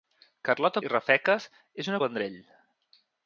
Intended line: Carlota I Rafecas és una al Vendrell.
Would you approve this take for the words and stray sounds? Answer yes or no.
yes